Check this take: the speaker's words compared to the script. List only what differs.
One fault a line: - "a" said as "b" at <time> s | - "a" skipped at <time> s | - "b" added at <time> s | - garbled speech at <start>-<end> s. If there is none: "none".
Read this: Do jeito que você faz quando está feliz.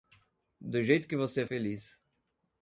- "faz quando está" skipped at 1.4 s